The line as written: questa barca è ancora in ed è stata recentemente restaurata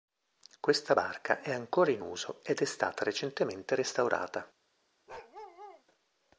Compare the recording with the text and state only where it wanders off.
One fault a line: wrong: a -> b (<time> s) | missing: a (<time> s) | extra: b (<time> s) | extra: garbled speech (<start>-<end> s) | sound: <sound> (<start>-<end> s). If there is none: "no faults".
extra: uso (2.0 s)
sound: bark (5.1-5.8 s)